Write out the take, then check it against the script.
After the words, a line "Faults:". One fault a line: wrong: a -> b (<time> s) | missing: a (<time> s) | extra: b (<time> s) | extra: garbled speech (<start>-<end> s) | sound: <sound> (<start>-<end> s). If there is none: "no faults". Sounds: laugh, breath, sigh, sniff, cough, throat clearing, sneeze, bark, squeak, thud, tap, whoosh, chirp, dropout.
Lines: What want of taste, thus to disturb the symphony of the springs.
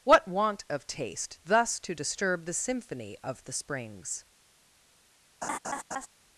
What want of taste, thus to disturb the symphony of the springs.
Faults:
sound: laugh (5.4-6.1 s)